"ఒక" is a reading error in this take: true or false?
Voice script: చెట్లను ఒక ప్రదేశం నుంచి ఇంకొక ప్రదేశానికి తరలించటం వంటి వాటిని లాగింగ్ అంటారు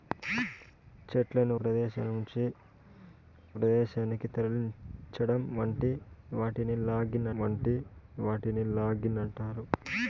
true